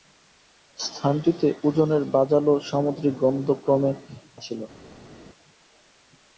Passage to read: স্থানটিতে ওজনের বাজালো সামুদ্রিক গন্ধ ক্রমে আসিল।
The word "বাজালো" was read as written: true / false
true